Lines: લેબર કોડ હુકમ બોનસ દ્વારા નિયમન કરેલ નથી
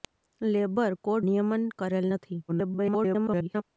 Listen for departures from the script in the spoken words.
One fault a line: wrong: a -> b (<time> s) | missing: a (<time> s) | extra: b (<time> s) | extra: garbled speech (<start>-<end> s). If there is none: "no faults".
missing: હુકમ બોનસ દ્વારા (1.2 s)
extra: garbled speech (2.5-3.6 s)